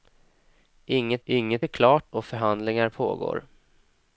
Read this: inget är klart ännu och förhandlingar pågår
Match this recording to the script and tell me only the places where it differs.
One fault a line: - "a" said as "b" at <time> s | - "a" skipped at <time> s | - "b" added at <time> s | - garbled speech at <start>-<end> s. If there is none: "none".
- "inget" added at 1.2 s
- "ännu" skipped at 2.1 s